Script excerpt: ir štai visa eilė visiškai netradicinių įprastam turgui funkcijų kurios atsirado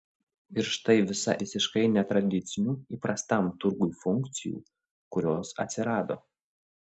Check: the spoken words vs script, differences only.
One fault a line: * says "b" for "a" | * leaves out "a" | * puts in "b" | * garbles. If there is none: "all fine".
* leaves out "eilė"